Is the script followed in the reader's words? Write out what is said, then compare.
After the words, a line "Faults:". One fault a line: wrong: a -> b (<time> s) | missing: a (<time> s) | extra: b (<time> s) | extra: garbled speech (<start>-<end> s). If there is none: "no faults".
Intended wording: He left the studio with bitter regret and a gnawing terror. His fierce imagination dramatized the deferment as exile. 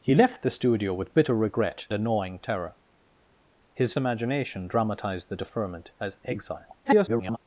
He left the studio with bitter regret a gnawing terror. His imagination dramatized the deferment as exile. [garbled]
Faults:
missing: and (1.9 s)
missing: fierce (3.9 s)
extra: garbled speech (6.8-7.4 s)